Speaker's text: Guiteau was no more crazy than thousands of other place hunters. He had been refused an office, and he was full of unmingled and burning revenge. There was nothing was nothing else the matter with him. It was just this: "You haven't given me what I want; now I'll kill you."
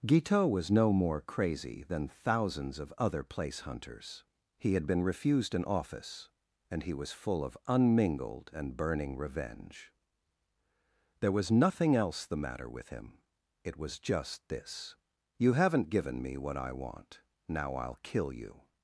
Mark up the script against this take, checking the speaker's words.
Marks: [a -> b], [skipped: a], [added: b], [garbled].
Guiteau was no more crazy than thousands of other place hunters. He had been refused an office, and he was full of unmingled and burning revenge. There was nothing [skipped: was nothing] else the matter with him. It was just this: "You haven't given me what I want; now I'll kill you."